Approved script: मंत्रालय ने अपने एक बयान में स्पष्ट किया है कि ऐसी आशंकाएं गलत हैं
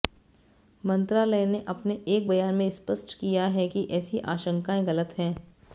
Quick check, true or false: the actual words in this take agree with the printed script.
true